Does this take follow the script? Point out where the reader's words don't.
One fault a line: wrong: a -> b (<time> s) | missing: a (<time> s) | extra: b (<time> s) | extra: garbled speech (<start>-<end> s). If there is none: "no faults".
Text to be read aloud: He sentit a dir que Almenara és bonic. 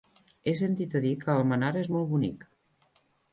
extra: molt (2.0 s)